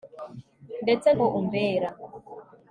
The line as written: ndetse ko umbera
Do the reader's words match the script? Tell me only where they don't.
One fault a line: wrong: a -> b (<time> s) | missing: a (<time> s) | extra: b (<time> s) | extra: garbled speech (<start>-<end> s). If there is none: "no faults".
no faults